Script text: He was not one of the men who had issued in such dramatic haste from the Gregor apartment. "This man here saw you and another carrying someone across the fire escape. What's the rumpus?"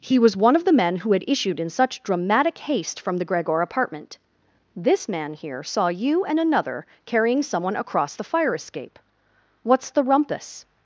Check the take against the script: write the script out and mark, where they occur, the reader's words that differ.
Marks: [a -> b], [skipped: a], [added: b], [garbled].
He was [skipped: not] one of the men who had issued in such dramatic haste from the Gregor apartment. "This man here saw you and another carrying someone across the fire escape. What's the rumpus?"